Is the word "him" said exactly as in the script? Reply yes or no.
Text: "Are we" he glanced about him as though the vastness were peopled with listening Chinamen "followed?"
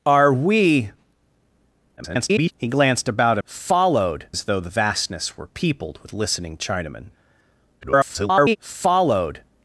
no